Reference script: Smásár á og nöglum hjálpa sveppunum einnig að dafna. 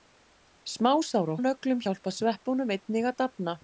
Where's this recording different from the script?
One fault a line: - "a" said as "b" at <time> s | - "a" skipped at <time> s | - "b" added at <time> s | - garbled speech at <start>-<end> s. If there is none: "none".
none